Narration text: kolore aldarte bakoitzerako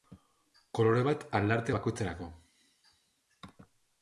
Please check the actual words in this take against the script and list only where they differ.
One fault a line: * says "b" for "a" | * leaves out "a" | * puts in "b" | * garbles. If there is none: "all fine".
* puts in "bat"